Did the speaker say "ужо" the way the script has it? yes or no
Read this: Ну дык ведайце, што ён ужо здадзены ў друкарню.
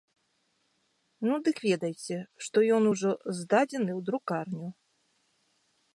yes